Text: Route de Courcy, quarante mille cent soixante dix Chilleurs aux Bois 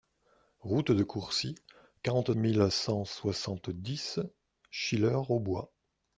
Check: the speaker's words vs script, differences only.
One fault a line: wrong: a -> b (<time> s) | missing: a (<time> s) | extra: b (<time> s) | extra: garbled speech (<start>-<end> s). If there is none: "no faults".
no faults